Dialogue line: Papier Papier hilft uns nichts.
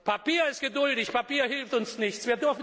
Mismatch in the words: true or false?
true